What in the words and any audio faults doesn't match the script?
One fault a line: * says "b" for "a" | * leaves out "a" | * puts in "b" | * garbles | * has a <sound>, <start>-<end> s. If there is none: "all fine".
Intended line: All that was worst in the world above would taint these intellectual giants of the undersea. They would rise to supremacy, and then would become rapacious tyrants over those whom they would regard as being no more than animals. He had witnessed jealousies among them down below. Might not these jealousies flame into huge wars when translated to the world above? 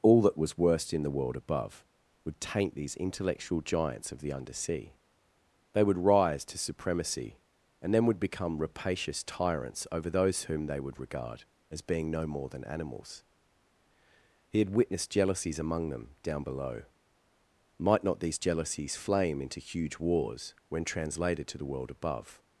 all fine